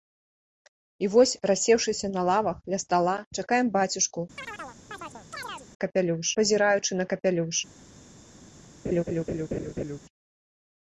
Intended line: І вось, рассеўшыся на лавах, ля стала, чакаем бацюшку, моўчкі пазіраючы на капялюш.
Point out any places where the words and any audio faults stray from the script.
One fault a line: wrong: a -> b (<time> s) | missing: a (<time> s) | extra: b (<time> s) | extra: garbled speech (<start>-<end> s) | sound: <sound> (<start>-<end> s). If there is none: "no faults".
sound: chirp (4.4-5.7 s)
wrong: моўчкі -> капялюш (5.9 s)
sound: laugh (8.8-10.0 s)